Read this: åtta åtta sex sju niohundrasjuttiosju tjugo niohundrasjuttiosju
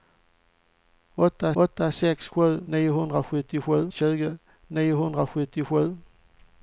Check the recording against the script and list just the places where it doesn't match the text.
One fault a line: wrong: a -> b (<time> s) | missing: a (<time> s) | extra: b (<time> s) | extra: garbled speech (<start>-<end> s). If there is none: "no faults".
no faults